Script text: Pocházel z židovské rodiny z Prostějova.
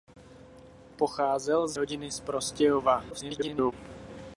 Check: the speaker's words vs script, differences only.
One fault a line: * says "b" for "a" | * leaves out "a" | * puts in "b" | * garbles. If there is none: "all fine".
* leaves out "židovské"
* garbles